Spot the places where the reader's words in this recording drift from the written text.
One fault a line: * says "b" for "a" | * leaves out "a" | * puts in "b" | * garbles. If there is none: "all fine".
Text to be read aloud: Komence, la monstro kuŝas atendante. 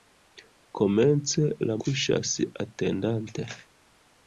* leaves out "monstro"